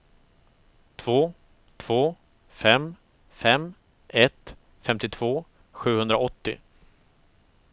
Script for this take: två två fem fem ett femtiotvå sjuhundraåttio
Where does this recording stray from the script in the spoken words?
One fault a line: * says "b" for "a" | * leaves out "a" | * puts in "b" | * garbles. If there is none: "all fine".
all fine